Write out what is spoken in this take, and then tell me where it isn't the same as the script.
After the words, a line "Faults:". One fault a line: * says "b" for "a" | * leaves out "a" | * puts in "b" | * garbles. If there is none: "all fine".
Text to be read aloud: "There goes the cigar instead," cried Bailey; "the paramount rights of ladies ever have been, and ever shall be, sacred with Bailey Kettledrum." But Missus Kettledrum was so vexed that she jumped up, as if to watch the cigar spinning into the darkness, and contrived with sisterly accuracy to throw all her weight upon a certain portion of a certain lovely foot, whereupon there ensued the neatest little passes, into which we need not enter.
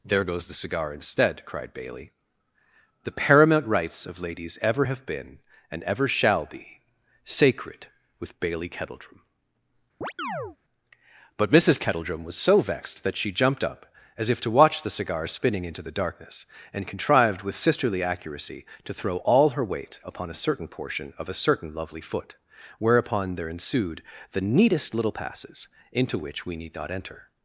"There goes the cigar instead," cried Bailey; "the paramount rights of ladies ever have been, and ever shall be, sacred with Bailey Kettledrum." But Missus Kettledrum was so vexed that she jumped up, as if to watch the cigar spinning into the darkness, and contrived with sisterly accuracy to throw all her weight upon a certain portion of a certain lovely foot, whereupon there ensued the neatest little passes, into which we need not enter.
Faults:
all fine